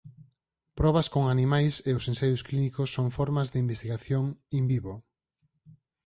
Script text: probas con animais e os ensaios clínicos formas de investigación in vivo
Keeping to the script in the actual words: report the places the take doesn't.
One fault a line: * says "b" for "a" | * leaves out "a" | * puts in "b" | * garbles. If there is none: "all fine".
* puts in "son"